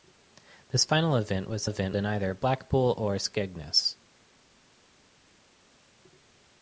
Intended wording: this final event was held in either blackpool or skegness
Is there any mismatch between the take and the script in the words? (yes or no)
yes